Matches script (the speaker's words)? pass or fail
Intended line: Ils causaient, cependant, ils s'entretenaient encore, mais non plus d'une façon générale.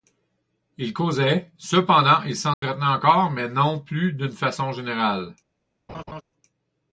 pass